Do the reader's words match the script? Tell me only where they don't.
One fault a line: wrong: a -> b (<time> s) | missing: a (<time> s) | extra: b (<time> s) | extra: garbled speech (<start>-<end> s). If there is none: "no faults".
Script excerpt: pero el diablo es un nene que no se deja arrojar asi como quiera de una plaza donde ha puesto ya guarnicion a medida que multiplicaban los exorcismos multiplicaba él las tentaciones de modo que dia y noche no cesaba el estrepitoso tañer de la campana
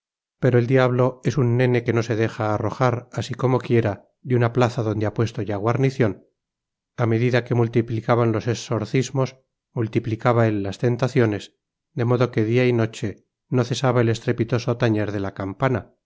no faults